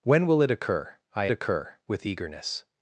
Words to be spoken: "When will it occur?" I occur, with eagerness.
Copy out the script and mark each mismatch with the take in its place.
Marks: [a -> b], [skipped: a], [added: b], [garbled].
"When will it occur?" I occur, with eagerness.